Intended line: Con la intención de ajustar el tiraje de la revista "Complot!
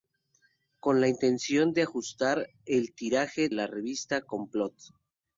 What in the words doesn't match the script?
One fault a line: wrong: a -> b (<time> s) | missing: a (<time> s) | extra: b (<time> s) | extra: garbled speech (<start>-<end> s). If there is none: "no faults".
missing: de (3.5 s)